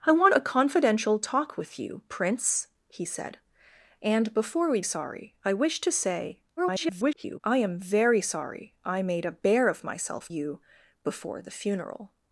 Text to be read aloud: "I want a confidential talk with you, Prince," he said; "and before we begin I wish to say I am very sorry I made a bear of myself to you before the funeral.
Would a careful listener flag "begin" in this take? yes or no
yes